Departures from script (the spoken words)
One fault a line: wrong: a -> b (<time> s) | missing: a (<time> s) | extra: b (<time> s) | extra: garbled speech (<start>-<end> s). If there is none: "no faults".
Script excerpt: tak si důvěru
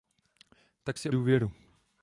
no faults